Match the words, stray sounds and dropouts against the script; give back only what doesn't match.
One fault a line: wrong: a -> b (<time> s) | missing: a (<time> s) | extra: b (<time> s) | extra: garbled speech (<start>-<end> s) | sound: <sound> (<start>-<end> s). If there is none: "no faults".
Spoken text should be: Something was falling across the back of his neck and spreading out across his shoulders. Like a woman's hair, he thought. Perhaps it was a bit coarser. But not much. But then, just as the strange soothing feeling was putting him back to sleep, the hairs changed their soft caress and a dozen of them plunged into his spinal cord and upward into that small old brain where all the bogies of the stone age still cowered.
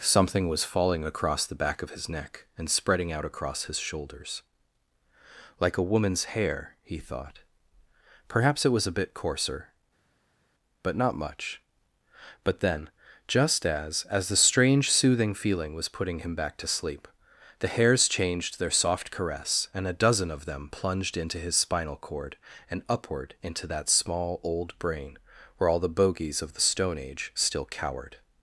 extra: as (14.1 s)